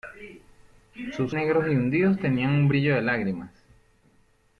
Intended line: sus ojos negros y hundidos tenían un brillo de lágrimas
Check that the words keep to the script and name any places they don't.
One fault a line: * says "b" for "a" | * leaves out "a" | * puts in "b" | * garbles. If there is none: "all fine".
* leaves out "ojos"